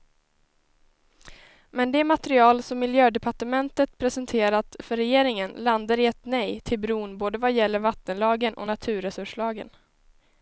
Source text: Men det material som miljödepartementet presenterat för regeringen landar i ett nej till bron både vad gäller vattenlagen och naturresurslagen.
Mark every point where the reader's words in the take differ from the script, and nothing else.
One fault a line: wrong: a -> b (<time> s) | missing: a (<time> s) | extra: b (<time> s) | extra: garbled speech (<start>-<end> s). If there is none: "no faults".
no faults